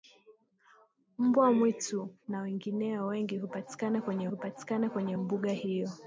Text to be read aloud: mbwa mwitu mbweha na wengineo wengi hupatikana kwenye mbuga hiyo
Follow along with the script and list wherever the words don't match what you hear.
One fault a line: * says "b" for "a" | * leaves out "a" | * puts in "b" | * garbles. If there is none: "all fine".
* leaves out "mbweha"
* puts in "hupatikana kwenye"